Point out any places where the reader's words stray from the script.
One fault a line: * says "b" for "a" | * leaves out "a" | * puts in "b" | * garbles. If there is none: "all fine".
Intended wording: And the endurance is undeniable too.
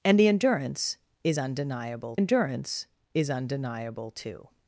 * puts in "endurance is undeniable"